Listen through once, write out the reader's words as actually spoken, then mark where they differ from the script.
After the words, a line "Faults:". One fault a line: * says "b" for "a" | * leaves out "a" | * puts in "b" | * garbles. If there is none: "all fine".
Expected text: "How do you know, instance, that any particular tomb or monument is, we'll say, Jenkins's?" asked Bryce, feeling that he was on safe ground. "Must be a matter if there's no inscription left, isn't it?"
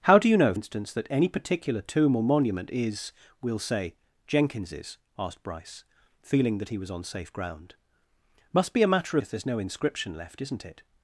"How do you know, instance, that any particular tomb or monument is, we'll say, Jenkins's?" asked Bryce, feeling that he was on safe ground. "Must be a matter if there's no inscription left, isn't it?"
Faults:
all fine